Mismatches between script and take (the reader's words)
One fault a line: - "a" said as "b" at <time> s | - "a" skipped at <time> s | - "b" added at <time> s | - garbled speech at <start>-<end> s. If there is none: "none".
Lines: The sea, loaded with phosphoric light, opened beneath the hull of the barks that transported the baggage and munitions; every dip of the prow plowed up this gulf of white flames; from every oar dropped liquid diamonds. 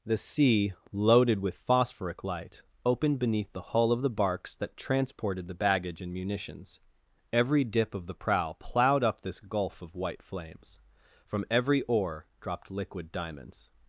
none